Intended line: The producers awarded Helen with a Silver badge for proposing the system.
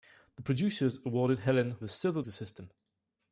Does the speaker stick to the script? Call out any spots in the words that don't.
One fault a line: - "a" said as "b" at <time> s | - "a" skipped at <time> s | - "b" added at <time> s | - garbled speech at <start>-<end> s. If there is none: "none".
- "with" skipped at 1.8 s
- "badge for proposing" skipped at 2.2 s